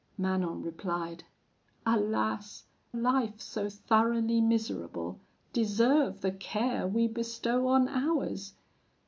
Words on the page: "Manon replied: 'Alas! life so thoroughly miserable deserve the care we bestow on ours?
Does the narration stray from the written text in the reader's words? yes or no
no